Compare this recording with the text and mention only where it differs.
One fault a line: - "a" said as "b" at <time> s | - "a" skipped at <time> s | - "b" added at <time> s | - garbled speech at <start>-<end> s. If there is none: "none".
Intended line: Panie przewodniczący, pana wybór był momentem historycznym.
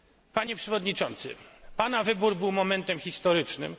none